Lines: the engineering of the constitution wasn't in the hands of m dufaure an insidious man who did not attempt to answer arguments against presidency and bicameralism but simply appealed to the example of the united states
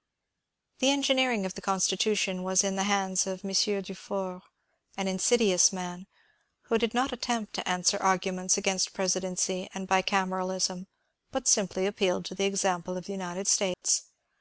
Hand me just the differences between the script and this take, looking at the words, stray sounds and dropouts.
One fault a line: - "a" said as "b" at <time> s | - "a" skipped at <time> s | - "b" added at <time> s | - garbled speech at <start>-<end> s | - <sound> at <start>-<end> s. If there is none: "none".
- "wasn't" said as "was" at 2.4 s
- dropout at 13.7-13.8 s